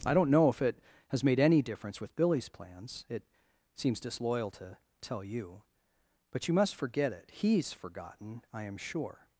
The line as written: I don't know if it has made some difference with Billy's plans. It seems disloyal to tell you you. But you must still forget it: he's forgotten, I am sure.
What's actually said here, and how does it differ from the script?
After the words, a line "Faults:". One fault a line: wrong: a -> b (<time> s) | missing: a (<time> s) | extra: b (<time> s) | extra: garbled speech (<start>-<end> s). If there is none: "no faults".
I don't know if it has made any difference with Billy's plans. It seems disloyal to tell you. But you must forget it: he's forgotten, I am sure.
Faults:
wrong: some -> any (1.4 s)
missing: you (5.6 s)
missing: still (6.8 s)